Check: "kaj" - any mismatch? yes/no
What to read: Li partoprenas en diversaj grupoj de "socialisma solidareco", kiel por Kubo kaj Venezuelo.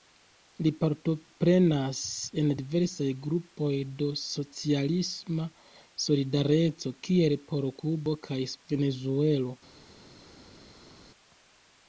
no